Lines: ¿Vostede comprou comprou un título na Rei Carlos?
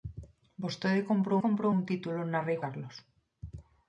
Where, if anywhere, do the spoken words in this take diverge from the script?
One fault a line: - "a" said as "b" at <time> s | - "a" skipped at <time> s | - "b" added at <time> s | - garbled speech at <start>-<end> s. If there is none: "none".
none